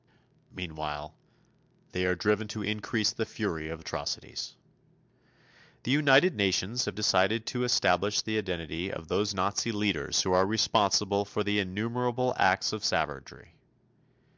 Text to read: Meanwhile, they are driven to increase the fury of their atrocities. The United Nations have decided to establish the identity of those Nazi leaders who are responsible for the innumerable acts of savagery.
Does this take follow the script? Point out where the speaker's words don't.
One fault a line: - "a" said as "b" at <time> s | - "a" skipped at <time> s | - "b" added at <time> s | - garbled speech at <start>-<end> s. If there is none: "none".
- "their" skipped at 3.8 s